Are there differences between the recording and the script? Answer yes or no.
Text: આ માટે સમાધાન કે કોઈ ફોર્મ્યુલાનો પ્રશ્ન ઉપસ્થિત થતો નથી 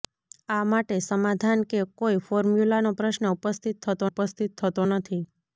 yes